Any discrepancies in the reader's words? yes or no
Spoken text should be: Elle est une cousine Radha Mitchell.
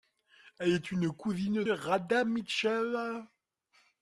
no